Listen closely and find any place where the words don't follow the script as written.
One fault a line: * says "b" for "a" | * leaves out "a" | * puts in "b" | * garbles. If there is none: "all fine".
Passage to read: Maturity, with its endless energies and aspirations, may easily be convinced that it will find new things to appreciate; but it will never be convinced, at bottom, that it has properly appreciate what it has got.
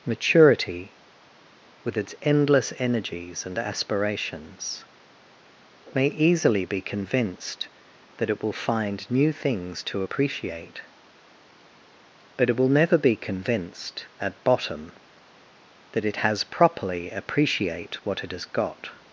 all fine